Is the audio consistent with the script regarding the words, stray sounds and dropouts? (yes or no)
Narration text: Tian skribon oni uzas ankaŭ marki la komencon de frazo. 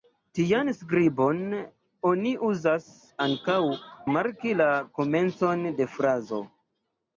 yes